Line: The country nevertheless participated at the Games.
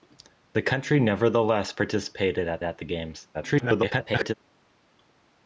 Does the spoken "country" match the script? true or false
true